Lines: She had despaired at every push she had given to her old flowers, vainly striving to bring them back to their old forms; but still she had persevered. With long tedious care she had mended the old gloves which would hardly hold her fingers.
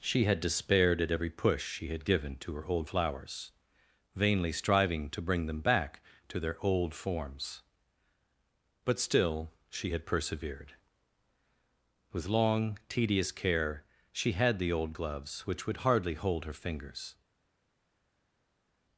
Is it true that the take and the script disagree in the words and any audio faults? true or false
true